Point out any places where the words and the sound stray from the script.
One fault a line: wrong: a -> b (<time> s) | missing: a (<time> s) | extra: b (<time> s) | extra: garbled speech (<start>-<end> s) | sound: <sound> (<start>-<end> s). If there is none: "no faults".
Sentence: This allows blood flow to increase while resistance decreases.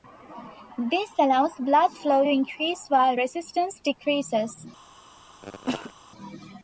sound: cough (5.4-5.9 s)